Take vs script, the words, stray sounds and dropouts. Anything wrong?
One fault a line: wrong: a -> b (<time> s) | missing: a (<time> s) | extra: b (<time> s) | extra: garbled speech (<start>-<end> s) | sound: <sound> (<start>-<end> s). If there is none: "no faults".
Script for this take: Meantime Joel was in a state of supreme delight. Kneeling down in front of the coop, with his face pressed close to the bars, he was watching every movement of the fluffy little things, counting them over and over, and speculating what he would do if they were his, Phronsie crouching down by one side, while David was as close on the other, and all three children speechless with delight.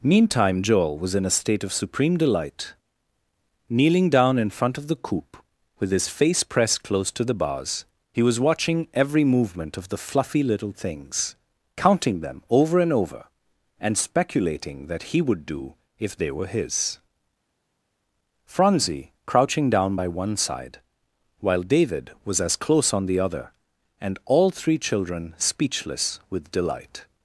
wrong: what -> that (14.9 s)